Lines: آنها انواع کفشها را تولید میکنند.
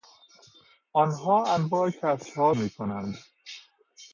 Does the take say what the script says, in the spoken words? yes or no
no